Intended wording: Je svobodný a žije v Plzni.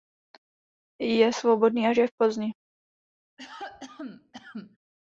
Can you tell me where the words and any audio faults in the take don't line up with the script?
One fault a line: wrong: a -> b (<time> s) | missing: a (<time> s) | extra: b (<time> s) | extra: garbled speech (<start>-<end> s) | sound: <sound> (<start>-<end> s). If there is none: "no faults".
sound: cough (3.4-4.8 s)